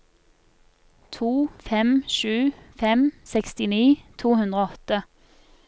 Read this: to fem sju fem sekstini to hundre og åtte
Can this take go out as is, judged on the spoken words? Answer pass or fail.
pass